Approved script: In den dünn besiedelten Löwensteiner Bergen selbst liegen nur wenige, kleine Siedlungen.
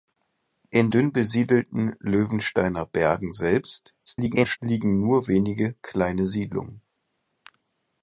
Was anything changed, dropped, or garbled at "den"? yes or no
yes